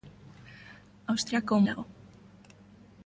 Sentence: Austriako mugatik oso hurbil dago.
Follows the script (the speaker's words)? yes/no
no